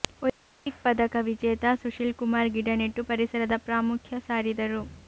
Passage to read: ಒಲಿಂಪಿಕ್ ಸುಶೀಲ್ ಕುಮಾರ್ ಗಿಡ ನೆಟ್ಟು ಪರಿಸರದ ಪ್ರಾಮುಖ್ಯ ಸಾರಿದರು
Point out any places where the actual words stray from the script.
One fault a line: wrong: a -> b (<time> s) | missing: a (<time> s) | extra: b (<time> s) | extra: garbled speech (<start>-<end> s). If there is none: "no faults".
extra: ಪದಕ ವಿಜೇತ (0.8 s)